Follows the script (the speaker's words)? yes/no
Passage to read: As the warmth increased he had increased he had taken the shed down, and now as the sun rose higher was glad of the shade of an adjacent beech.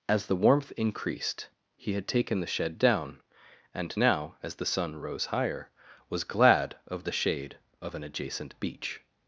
no